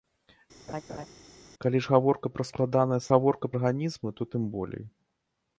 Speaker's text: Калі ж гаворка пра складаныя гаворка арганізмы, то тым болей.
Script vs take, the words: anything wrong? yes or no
no